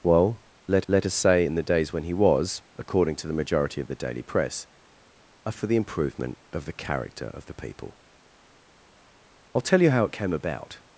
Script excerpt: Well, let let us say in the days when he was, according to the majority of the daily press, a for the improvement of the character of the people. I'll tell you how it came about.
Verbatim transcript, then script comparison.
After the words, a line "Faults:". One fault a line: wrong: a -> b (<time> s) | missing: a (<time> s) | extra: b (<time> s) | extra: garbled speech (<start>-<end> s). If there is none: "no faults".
Well, let let us say in the days when he was, according to the majority of the daily press, a for the improvement of the character of the people. I'll tell you how it came about.
Faults:
no faults